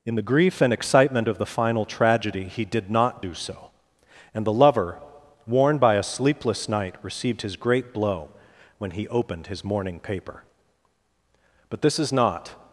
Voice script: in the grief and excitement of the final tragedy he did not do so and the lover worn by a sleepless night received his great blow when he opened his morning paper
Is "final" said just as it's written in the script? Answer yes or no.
yes